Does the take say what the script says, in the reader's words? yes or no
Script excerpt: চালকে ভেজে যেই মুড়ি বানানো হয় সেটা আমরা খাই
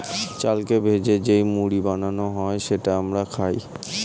yes